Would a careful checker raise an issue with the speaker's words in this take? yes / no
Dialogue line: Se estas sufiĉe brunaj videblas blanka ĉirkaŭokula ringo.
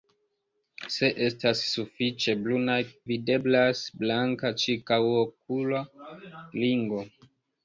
no